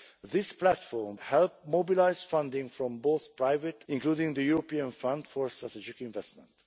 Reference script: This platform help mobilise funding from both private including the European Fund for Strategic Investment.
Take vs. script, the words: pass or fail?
pass